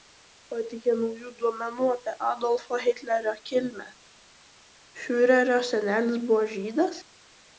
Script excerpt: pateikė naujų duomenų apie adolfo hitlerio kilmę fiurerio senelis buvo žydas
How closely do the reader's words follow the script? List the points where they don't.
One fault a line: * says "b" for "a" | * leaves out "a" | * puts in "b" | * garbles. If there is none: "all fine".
all fine